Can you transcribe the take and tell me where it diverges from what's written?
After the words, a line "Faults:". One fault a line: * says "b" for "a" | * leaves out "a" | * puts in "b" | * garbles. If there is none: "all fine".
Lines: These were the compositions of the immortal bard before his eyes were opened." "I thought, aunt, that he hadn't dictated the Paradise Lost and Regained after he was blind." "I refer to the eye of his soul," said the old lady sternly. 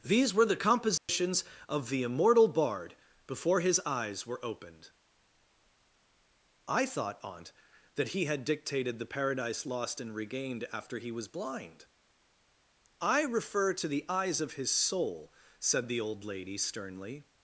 These were the compositions of the immortal bard before his eyes were opened." "I thought, aunt, that he had dictated the Paradise Lost and Regained after he was blind." "I refer to the eyes of his soul," said the old lady sternly.
Faults:
* says "had" for "hadn't"
* says "eyes" for "eye"